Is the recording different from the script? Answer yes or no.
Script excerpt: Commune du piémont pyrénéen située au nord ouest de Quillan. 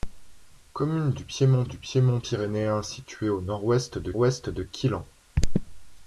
yes